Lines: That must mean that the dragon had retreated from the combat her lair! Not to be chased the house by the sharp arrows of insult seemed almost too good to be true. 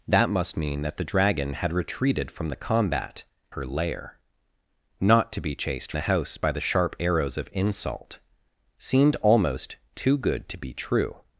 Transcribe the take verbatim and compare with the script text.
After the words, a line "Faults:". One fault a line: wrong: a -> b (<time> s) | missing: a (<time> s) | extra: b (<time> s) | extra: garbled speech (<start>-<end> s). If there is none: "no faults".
That must mean that the dragon had retreated from the combat her lair! Not to be chased the house by the sharp arrows of insult seemed almost too good to be true.
Faults:
no faults